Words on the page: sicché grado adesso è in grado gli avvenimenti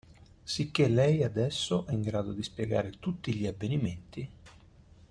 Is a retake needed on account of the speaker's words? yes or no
yes